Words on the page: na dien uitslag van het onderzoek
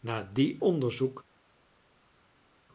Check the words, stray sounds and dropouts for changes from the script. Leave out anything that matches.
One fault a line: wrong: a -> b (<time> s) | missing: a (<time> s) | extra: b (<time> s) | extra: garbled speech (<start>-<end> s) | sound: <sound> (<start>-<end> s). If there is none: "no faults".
missing: uitslag van het (0.6 s)